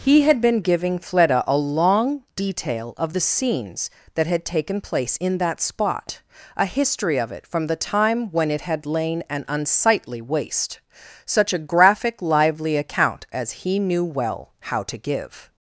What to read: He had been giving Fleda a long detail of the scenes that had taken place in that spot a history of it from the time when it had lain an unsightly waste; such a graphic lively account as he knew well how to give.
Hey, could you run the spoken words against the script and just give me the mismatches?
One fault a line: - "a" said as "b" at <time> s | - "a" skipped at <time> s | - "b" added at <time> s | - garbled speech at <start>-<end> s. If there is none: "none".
none